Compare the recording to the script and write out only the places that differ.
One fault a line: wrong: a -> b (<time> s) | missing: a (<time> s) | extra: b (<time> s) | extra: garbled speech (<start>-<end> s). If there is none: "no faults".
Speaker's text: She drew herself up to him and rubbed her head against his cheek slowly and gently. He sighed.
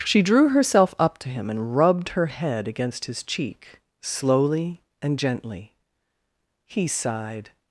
no faults